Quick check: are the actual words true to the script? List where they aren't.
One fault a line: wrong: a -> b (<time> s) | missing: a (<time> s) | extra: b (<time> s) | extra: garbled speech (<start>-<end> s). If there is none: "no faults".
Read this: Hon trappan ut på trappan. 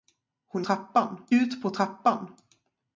no faults